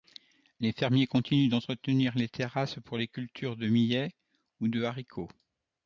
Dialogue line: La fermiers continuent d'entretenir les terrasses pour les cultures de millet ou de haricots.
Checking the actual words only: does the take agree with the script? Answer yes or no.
no